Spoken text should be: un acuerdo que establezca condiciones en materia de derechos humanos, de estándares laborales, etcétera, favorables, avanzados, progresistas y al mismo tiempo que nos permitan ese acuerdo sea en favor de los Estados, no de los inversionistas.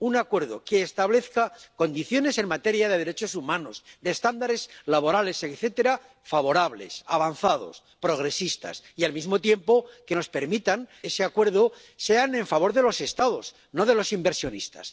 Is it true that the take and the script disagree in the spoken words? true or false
false